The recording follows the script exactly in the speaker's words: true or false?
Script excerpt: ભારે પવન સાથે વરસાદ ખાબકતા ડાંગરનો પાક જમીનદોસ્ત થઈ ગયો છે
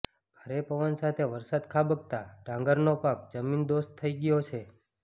true